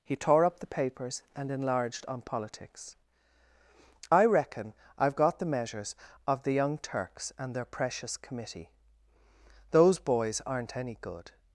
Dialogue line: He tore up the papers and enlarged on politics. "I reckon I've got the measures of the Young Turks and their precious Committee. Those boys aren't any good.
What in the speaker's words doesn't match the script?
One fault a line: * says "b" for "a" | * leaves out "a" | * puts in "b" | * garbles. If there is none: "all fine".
all fine